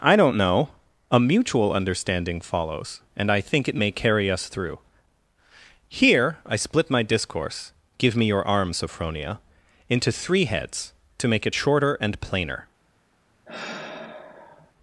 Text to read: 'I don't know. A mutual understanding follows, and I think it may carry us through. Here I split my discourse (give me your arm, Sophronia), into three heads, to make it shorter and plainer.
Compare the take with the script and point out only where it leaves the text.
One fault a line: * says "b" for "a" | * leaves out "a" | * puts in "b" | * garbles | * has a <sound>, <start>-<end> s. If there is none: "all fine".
* has a sigh, 13.5-14.7 s